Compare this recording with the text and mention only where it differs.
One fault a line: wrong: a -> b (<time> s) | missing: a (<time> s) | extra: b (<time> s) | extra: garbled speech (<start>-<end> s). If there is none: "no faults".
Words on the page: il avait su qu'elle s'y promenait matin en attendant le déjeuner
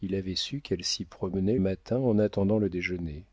no faults